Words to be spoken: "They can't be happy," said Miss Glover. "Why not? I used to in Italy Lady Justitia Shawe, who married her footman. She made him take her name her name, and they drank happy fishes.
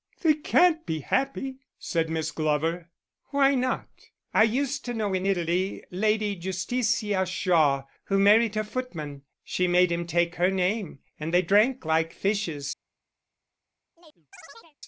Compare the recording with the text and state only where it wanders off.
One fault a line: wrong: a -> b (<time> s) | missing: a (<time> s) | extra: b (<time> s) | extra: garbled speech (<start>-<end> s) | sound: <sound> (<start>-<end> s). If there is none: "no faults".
extra: know (5.0 s)
missing: her name (11.0 s)
wrong: happy -> like (11.8 s)
sound: chirp (13.9-14.8 s)